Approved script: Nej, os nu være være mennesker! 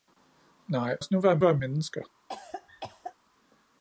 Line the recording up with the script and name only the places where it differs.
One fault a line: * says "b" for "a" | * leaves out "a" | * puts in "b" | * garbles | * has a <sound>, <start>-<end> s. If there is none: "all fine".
* has a cough, 2.3-3.1 s